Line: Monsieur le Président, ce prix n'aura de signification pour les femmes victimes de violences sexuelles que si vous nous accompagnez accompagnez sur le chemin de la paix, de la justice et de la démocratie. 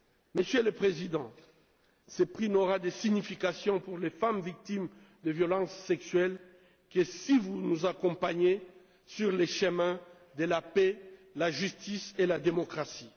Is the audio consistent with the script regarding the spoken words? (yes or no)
no